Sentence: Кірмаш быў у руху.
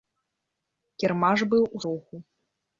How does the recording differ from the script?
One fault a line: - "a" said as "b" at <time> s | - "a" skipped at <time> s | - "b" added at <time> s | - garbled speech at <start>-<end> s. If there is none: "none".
none